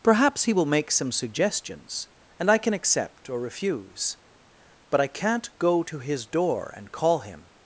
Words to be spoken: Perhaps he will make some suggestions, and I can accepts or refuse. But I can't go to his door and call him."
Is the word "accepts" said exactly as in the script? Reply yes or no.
no